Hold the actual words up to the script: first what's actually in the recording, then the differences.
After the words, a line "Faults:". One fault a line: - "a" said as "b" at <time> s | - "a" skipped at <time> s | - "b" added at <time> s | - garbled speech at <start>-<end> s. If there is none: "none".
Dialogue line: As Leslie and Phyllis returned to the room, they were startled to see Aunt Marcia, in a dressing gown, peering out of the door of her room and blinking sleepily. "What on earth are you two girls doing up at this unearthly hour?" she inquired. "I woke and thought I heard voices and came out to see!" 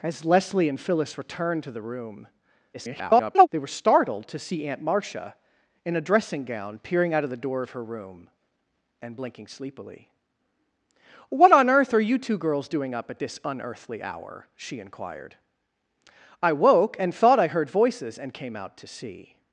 As Leslie and Phyllis returned to the room, [garbled] they were startled to see Aunt Marcia, in a dressing gown, peering out of the door of her room and blinking sleepily. "What on earth are you two girls doing up at this unearthly hour?" she inquired. "I woke and thought I heard voices and came out to see!"
Faults:
- garbled speech at 2.7-3.5 s